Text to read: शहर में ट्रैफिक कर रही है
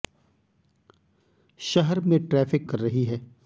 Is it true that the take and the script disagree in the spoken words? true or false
false